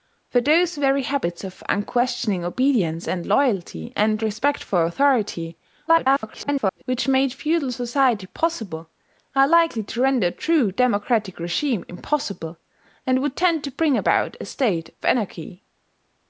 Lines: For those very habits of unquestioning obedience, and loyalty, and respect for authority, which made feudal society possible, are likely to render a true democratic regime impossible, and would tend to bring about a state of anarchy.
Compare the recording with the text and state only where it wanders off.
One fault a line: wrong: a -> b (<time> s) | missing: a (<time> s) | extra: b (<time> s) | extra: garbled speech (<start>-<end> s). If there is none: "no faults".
extra: garbled speech (5.9-6.8 s)